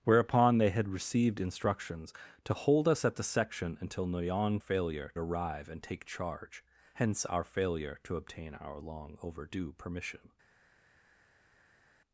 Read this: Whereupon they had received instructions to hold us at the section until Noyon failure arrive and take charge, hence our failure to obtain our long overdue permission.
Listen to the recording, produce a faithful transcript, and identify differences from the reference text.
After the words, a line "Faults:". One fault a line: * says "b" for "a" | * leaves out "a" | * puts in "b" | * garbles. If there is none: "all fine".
Whereupon they had received instructions to hold us at the section until Noyon failure arrive and take charge, hence our failure to obtain our long overdue permission.
Faults:
all fine